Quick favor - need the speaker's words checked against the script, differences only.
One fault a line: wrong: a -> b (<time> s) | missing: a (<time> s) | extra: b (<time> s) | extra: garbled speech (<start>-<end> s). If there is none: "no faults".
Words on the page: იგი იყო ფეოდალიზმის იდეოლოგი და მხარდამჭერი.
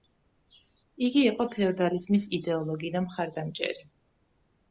no faults